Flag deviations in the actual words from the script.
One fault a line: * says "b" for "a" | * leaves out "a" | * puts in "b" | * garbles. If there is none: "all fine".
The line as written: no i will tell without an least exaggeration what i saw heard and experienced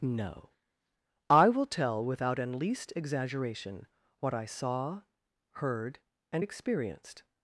all fine